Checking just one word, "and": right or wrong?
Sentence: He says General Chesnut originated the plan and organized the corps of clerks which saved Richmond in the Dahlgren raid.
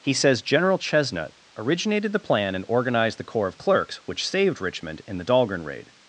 right